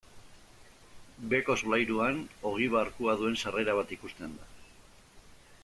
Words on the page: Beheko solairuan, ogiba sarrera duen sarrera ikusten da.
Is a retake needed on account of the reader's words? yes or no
yes